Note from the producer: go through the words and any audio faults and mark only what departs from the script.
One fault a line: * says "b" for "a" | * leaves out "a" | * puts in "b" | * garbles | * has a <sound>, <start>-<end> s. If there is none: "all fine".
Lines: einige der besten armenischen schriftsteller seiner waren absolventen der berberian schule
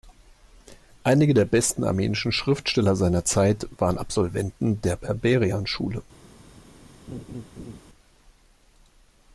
* puts in "zeit"
* has a laugh, 7.1-7.8 s